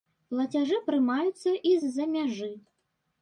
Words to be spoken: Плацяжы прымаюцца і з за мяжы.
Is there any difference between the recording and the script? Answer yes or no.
no